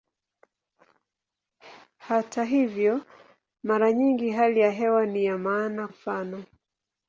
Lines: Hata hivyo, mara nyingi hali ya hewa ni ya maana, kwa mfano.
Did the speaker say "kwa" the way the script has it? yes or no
no